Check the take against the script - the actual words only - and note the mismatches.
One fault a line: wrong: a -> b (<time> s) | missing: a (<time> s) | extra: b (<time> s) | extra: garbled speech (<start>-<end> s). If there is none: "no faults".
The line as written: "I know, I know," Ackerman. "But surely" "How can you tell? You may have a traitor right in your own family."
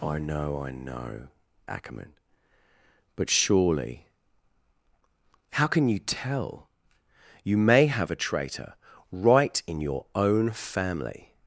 no faults